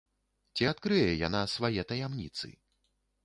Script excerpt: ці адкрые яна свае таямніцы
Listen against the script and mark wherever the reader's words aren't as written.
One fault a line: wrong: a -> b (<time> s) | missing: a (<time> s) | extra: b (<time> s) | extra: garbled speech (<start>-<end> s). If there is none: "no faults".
no faults